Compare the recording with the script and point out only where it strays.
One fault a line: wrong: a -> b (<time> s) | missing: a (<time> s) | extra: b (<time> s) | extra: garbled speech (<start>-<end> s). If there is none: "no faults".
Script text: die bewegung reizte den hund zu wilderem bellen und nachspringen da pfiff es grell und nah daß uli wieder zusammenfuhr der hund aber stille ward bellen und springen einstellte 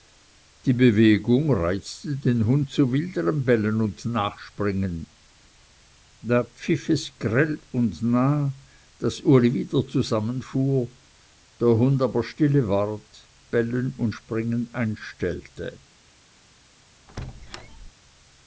no faults